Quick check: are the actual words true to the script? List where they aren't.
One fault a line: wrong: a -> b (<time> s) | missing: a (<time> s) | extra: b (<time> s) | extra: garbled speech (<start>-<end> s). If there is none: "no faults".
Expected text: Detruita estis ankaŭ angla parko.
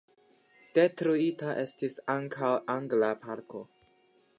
no faults